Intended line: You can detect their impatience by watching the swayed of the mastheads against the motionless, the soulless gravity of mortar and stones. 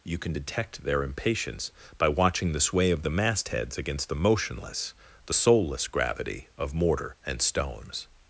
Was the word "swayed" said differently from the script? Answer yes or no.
yes